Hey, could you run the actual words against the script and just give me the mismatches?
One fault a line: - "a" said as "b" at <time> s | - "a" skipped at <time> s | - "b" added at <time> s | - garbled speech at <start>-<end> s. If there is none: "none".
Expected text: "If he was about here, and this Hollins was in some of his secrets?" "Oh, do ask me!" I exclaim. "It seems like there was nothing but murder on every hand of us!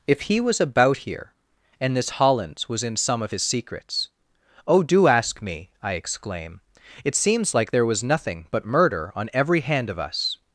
none